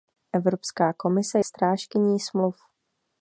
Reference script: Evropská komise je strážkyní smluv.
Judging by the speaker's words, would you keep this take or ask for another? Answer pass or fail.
fail